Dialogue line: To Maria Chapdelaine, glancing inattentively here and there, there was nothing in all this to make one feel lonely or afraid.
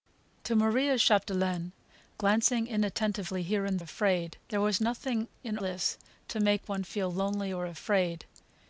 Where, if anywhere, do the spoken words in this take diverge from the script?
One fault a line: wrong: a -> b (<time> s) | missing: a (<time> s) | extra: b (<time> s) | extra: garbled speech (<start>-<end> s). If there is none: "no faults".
wrong: there -> afraid (3.8 s)
missing: all (5.6 s)